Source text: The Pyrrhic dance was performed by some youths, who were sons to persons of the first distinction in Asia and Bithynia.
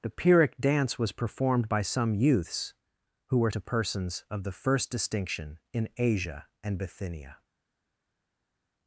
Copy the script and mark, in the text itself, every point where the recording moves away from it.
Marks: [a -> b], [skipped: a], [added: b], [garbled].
The Pyrrhic dance was performed by some youths, who were [skipped: sons] to persons of the first distinction in Asia and Bithynia.